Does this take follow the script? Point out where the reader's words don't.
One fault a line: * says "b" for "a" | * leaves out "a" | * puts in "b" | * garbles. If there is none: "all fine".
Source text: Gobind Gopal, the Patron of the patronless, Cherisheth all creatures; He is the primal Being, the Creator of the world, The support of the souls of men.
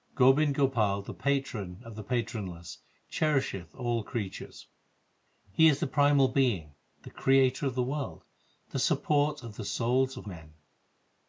all fine